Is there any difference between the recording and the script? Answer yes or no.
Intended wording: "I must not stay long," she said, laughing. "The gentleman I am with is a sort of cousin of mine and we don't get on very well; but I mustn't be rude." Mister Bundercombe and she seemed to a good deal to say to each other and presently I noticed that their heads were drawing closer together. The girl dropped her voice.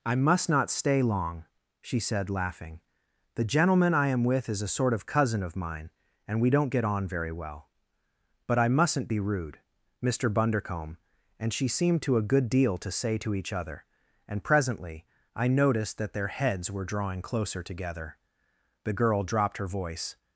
no